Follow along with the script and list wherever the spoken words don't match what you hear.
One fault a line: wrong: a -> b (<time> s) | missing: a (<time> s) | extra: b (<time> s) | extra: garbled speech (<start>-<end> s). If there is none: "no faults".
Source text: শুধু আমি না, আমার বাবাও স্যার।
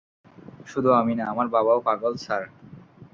extra: পাগল (1.9 s)